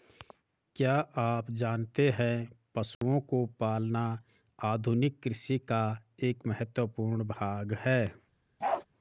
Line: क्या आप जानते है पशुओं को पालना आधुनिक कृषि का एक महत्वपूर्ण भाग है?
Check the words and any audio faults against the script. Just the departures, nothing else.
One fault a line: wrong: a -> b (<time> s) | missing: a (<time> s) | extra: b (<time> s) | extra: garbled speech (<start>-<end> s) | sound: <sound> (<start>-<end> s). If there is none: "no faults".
sound: dropout (2.9-3.0 s)
sound: bark (8.6-8.9 s)